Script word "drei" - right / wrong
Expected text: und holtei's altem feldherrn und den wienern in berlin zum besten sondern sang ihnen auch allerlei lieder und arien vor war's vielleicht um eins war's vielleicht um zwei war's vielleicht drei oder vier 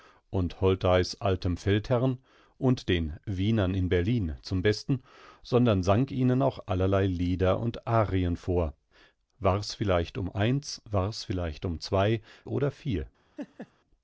wrong